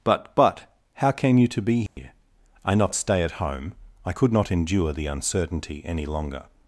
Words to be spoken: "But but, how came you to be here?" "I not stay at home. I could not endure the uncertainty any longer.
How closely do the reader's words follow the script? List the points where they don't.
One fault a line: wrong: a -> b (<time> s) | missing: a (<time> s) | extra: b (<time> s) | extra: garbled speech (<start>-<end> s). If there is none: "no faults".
no faults